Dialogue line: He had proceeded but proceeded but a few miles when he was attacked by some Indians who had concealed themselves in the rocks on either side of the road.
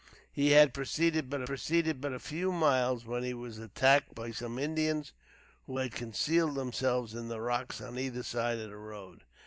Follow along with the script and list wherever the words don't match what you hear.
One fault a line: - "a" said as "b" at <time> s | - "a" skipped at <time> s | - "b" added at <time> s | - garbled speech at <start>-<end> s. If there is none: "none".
none